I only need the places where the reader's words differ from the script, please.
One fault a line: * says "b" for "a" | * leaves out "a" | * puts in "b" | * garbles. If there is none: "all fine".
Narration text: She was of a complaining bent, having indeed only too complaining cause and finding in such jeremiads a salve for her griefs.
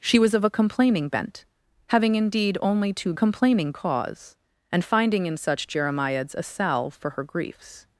all fine